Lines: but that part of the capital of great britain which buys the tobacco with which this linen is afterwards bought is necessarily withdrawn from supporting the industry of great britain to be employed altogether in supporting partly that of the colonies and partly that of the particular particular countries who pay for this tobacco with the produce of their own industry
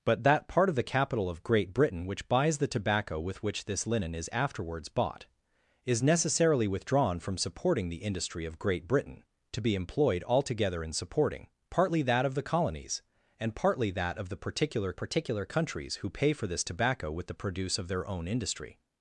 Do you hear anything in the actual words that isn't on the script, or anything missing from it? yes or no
no